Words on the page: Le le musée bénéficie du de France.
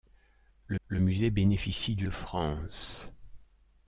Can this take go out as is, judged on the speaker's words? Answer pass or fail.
pass